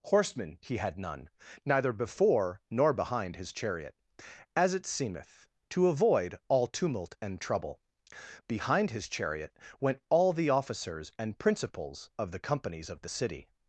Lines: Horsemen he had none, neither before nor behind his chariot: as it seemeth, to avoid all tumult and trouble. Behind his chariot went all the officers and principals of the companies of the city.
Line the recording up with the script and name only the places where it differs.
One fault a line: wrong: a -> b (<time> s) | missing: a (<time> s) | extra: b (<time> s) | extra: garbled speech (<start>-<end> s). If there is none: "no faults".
no faults